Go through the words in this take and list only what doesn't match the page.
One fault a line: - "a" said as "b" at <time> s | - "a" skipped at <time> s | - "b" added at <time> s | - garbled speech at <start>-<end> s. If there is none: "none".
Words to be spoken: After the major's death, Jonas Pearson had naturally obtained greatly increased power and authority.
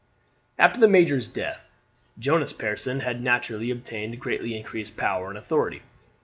none